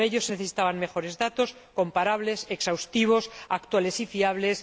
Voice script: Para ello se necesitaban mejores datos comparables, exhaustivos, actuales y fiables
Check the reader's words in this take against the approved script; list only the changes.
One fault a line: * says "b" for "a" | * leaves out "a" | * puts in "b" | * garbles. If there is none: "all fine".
all fine